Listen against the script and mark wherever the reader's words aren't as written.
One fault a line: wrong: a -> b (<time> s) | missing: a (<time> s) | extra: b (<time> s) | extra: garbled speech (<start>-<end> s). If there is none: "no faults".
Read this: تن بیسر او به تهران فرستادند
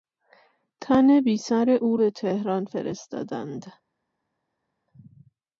no faults